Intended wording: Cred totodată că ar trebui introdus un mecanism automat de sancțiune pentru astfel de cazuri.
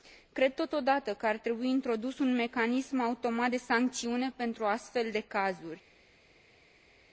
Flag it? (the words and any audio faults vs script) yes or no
no